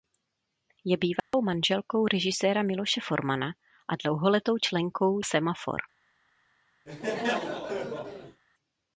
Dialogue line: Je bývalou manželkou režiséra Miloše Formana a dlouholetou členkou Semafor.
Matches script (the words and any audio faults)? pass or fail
fail